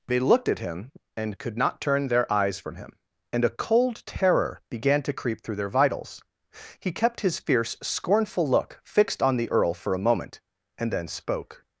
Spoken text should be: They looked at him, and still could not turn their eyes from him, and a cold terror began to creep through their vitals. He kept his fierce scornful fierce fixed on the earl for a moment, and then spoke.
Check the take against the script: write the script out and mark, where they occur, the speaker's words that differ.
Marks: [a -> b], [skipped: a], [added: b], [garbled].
They looked at him, and [skipped: still] could not turn their eyes from him, and a cold terror began to creep through their vitals. He kept his fierce scornful [fierce -> look] fixed on the earl for a moment, and then spoke.